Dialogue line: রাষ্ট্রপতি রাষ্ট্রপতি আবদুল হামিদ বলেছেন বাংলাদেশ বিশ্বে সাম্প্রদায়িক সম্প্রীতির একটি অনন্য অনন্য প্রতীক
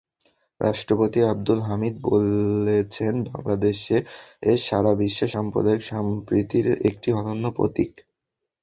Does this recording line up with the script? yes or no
no